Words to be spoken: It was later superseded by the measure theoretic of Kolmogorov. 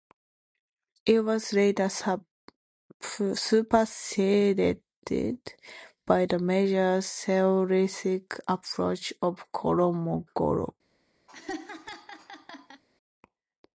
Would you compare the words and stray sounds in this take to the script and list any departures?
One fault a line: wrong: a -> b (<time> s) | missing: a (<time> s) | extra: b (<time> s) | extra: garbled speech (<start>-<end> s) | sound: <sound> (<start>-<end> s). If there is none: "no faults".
extra: approach (8.5 s)
sound: laugh (11.3-12.8 s)